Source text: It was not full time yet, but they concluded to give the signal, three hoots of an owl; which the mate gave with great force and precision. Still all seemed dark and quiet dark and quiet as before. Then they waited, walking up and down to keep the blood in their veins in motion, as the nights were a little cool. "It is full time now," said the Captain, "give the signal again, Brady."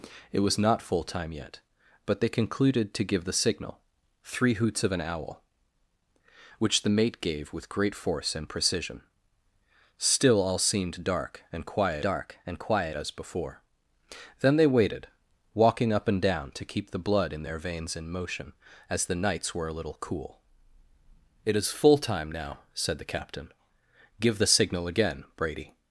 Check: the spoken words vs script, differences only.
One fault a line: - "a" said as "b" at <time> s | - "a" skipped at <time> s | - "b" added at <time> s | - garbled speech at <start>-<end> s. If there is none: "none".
none